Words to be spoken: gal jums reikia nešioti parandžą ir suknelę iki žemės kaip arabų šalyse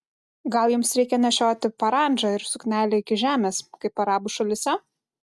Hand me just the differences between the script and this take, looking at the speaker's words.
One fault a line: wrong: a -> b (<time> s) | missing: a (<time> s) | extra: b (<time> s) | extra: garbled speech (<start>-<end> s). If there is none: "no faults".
no faults